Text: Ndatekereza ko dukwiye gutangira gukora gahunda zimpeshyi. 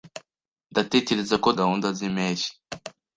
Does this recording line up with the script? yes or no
no